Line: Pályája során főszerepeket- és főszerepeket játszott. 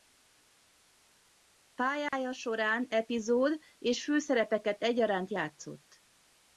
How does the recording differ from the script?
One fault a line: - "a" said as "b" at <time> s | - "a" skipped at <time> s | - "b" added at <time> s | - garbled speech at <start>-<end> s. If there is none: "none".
- "főszerepeket" said as "epizód" at 2.9 s
- "egyaránt" added at 4.8 s